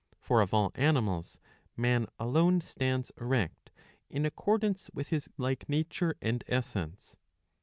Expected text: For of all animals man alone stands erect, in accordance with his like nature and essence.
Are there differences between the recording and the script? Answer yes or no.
no